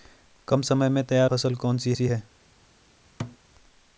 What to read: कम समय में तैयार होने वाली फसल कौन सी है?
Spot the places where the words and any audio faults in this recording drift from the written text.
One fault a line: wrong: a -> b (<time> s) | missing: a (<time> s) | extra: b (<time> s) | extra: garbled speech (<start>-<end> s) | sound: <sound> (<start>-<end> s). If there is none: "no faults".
missing: होने वाली (1.3 s)
extra: सी (1.9 s)
sound: thud (3.2-3.4 s)